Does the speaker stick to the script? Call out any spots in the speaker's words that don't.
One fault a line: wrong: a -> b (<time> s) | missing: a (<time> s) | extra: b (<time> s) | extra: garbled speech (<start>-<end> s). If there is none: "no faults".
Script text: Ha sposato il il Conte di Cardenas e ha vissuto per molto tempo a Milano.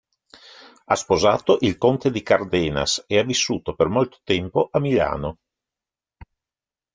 missing: il (1.8 s)